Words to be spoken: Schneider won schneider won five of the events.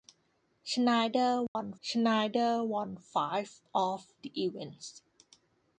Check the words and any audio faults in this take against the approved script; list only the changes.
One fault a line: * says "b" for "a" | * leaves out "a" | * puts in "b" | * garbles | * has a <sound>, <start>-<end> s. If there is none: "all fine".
* has a dropout, 1.5-1.5 s